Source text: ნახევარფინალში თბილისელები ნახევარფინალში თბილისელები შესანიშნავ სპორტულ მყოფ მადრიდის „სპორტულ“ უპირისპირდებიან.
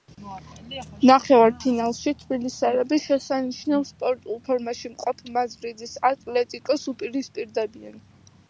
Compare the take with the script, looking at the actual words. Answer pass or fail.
fail